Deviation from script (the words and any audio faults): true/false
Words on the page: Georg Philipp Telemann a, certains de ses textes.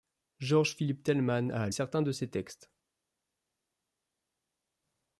false